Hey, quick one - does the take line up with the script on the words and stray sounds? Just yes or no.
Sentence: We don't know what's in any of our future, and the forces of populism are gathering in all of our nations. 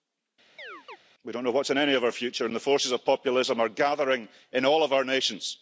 no